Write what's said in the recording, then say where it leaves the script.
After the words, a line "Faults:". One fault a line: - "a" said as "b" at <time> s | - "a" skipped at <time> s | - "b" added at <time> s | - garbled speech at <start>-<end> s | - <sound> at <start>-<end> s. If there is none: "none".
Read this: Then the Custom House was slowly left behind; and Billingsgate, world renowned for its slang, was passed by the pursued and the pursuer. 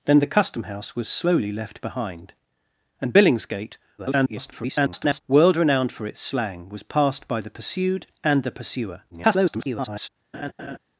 Then the Custom House was slowly left behind; and Billingsgate, [garbled] world renowned for its slang, was passed by the pursued and the pursuer. [garbled]
Faults:
- garbled speech at 4.0-5.2 s
- garbled speech at 9.1-10.1 s
- laugh at 10.3-10.8 s